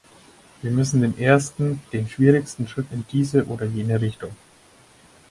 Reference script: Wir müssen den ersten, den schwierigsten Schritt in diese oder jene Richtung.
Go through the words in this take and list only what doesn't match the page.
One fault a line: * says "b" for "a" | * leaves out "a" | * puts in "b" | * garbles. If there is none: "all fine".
all fine